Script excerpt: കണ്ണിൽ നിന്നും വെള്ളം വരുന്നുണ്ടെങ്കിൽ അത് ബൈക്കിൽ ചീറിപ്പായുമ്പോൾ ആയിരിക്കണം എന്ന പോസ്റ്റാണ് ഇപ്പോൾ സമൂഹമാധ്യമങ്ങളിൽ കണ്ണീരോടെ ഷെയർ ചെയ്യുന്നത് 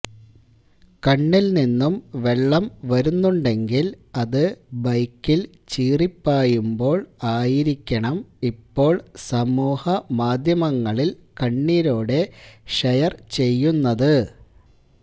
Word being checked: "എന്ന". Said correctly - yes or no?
no